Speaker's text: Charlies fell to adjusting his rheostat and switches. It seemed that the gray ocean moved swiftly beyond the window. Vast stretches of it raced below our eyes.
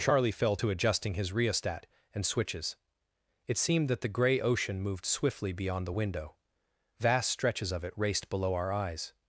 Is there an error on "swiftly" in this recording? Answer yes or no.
no